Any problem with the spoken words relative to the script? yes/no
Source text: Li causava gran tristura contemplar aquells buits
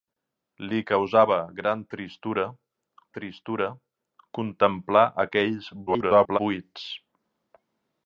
yes